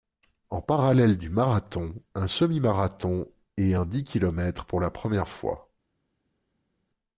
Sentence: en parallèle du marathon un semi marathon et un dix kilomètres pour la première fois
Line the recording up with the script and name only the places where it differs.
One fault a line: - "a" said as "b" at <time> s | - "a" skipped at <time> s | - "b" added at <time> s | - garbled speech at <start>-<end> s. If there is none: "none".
none